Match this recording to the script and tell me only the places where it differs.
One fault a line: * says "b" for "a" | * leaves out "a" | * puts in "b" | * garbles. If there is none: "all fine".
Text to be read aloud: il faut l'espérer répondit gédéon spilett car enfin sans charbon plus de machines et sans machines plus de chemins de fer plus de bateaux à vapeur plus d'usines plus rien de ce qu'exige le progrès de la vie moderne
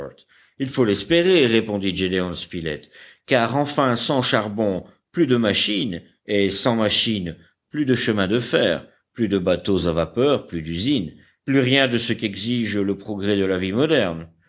all fine